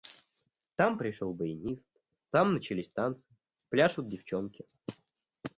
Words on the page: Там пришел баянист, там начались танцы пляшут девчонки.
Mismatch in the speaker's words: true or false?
false